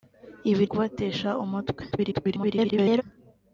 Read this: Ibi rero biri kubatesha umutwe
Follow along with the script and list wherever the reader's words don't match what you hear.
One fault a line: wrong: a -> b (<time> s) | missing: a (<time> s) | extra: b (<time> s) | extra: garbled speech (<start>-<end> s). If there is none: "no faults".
missing: rero biri (0.6 s)
extra: garbled speech (1.9-3.0 s)